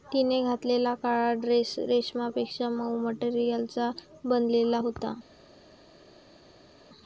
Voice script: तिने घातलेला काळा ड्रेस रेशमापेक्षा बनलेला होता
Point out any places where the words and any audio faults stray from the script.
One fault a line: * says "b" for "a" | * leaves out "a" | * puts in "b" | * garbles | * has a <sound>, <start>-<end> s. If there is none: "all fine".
* puts in "मऊ मटेरियलचा"